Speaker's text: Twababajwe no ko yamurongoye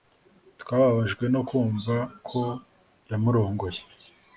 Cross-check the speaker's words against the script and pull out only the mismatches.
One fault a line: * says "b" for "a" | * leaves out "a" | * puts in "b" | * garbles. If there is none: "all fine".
* puts in "kumva"